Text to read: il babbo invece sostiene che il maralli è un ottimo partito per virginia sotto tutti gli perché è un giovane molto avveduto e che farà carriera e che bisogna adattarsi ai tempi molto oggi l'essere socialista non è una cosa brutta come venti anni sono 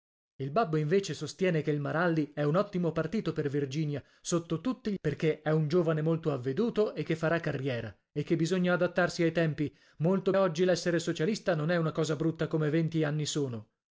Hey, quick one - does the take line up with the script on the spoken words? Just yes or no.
yes